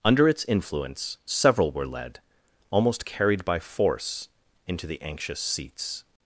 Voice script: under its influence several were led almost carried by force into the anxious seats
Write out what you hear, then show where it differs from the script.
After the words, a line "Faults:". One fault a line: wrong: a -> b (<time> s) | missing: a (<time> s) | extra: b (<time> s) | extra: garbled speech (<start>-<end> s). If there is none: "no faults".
under its influence several were led almost carried by force into the anxious seats
Faults:
no faults